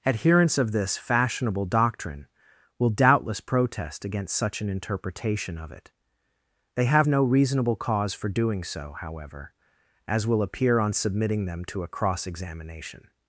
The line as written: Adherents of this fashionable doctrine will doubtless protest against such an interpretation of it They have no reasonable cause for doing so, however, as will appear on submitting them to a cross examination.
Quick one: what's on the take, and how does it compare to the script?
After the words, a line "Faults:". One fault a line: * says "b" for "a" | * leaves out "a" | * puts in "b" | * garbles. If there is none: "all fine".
Adherents of this fashionable doctrine will doubtless protest against such an interpretation of it They have no reasonable cause for doing so, however, as will appear on submitting them to a cross examination.
Faults:
all fine